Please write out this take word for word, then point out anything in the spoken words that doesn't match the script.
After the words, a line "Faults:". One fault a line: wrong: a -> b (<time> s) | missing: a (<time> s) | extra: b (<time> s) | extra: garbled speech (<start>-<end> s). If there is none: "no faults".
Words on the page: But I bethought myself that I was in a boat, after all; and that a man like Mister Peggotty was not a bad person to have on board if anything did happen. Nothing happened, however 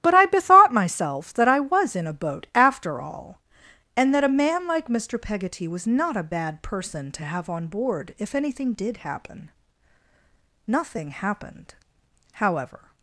But I bethought myself that I was in a boat, after all; and that a man like Mister Peggotty was not a bad person to have on board if anything did happen. Nothing happened, however
Faults:
no faults